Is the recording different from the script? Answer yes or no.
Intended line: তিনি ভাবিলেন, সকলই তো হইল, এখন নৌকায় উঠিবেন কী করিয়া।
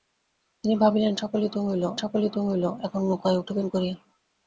yes